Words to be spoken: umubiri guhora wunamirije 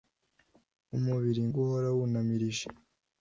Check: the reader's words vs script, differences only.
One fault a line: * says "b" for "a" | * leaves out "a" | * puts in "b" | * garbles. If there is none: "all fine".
all fine